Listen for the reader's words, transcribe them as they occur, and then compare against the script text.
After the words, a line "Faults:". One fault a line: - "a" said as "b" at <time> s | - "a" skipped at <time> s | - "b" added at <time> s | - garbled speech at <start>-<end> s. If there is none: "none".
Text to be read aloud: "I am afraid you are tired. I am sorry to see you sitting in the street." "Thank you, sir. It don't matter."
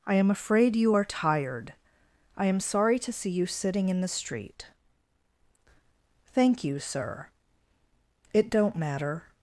"I am afraid you are tired. I am sorry to see you sitting in the street." "Thank you, sir. It don't matter."
Faults:
none